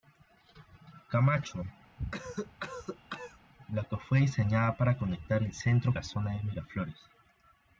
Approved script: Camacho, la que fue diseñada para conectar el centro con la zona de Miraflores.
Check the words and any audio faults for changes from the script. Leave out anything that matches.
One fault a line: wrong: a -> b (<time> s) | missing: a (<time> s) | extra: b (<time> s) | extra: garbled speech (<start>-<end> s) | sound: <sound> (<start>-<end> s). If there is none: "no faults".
sound: cough (2.0-3.4 s)
missing: con (6.0 s)